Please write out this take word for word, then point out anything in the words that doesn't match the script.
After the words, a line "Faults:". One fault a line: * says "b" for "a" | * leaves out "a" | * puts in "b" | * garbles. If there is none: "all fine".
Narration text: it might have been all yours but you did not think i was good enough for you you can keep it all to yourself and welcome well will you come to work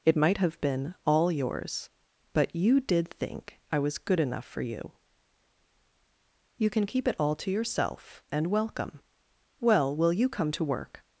it might have been all yours but you did think i was good enough for you you can keep it all to yourself and welcome well will you come to work
Faults:
* leaves out "not"